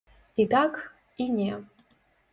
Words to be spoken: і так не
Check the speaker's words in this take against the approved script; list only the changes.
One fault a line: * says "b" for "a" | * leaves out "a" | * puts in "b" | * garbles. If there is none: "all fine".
* puts in "і"